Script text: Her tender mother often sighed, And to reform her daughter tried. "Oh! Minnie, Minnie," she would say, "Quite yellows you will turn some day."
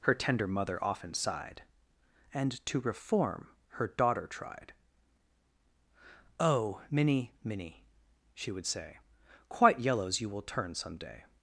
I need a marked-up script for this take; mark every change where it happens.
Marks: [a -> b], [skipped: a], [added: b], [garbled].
Her tender mother often sighed, And to reform her daughter tried. "Oh! Minnie, Minnie," she would say, "Quite yellows you will turn some day."